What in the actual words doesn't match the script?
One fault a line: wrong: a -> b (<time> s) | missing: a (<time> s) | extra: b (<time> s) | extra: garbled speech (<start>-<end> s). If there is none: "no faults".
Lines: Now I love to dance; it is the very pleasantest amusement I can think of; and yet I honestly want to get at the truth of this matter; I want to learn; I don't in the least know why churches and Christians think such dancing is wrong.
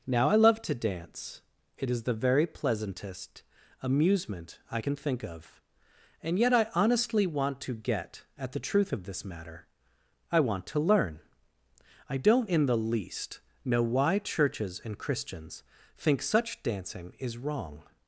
no faults